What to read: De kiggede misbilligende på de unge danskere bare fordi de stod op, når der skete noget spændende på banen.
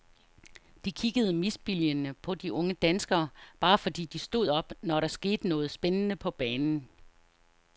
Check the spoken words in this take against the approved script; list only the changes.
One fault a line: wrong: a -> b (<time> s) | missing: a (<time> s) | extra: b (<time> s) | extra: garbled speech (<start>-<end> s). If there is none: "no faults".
no faults